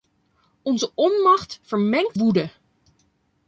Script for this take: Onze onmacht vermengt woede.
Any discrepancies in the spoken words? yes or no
no